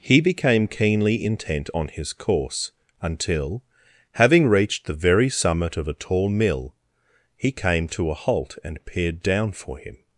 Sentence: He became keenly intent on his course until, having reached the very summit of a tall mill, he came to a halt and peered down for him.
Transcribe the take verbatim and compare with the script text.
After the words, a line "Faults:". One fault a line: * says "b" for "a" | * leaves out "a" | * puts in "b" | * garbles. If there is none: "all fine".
He became keenly intent on his course until, having reached the very summit of a tall mill, he came to a halt and peered down for him.
Faults:
all fine